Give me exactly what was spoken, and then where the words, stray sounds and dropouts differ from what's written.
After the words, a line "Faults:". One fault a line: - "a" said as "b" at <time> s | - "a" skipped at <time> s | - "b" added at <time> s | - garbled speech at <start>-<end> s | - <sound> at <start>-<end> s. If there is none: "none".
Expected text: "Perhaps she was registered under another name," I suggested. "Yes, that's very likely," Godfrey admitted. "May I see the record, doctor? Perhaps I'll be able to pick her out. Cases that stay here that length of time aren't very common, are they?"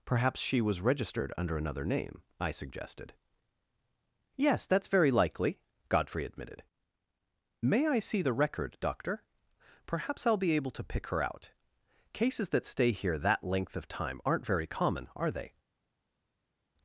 "Perhaps she was registered under another name," I suggested. "Yes, that's very likely," Godfrey admitted. "May I see the record, doctor? Perhaps I'll be able to pick her out. Cases that stay here that length of time aren't very common, are they?"
Faults:
none